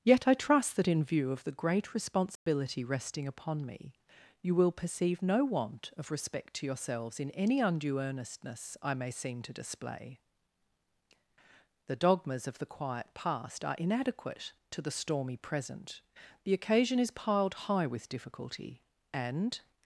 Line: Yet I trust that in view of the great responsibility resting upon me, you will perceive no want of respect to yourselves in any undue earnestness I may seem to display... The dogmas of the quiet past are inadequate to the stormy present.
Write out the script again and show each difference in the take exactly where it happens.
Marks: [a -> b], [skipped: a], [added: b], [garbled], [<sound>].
Yet I trust that in view of the great responsibility [dropout] resting upon me, you will perceive no want of respect to yourselves in any undue earnestness I may seem to display... The dogmas of the quiet past are inadequate to the stormy present. [added: The occasion is piled high with difficulty and]